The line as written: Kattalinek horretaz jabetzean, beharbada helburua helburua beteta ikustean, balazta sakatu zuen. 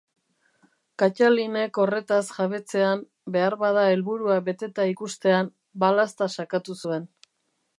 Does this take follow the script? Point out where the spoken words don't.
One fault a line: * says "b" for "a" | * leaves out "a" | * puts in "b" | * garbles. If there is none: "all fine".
* leaves out "helburua"